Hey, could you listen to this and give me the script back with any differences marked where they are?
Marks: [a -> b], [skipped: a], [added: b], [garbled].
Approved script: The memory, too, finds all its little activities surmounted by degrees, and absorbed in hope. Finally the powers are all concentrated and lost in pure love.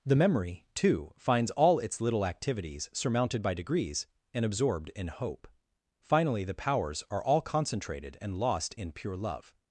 The memory, too, finds all its little activities surmounted by degrees, and absorbed in hope. Finally the powers are all concentrated and lost in pure love.